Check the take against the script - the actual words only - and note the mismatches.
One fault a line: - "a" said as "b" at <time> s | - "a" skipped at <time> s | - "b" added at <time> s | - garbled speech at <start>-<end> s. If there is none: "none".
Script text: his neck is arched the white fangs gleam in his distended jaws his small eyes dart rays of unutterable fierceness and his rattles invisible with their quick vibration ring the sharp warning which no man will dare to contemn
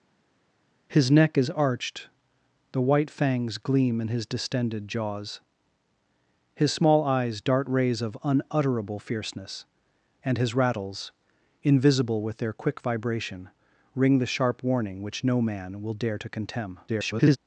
- garbled speech at 16.9-17.4 s